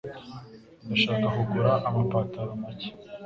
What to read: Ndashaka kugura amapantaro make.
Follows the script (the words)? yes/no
yes